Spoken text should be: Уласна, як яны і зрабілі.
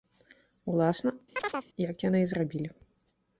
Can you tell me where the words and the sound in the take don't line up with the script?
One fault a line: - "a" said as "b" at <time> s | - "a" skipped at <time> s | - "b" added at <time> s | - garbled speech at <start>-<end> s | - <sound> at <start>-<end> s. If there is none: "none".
- chirp at 1.4-1.7 s